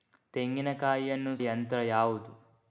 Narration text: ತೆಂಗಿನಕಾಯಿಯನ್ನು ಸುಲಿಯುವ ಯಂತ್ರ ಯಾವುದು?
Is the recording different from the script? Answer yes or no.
yes